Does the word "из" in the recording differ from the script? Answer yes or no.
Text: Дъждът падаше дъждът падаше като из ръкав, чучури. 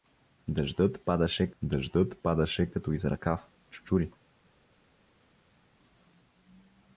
no